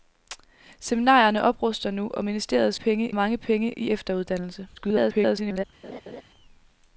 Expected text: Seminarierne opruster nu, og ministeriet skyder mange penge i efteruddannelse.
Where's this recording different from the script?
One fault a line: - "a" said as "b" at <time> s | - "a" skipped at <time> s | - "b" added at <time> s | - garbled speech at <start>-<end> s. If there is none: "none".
- "skyder" said as "penge" at 2.7 s
- garbled speech at 4.8-5.6 s